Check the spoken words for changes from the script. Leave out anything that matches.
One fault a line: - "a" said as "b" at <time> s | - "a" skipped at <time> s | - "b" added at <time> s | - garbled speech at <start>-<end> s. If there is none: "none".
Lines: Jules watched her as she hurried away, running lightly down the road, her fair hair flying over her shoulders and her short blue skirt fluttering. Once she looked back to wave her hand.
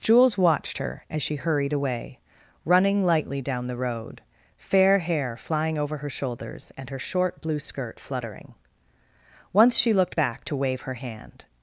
- "her" skipped at 4.2 s